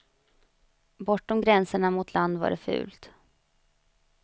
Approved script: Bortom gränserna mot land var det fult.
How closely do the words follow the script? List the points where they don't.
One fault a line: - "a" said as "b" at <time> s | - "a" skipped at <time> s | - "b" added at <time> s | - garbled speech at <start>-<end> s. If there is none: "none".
none